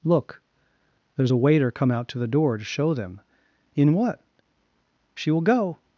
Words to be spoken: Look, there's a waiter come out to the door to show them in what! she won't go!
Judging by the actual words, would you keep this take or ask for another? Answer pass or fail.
fail